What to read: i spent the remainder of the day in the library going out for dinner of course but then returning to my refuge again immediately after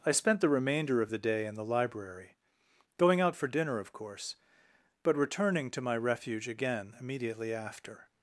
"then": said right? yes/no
no